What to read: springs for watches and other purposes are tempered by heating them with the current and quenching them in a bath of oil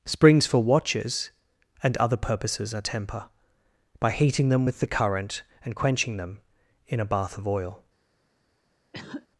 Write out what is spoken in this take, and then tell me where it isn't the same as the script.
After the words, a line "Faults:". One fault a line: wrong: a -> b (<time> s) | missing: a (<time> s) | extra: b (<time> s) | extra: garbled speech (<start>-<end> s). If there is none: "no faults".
springs for watches and other purposes are temper by heating them with the current and quenching them in a bath of oil
Faults:
wrong: tempered -> temper (2.8 s)